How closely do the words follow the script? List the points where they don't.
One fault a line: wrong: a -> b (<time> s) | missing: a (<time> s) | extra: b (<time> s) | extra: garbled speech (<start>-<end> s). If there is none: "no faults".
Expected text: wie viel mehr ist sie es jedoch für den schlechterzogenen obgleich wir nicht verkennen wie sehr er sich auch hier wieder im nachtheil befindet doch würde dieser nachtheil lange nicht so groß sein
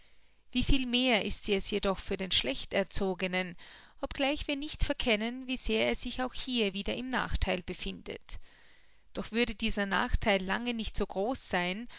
no faults